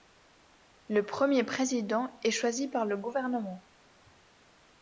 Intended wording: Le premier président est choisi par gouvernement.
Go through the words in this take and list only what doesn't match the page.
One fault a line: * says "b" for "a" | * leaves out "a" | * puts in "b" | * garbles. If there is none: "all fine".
* puts in "le"